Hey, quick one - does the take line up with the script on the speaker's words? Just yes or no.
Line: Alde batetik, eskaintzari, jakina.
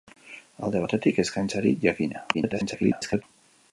no